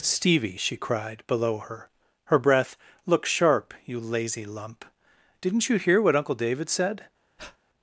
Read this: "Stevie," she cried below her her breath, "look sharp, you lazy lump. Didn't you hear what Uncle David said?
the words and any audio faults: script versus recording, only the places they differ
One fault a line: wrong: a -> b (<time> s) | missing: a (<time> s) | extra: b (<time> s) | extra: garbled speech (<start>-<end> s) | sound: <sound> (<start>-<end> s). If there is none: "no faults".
sound: breath (7.4-7.6 s)